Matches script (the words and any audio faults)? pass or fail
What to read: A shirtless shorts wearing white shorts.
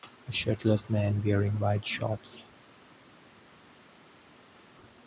fail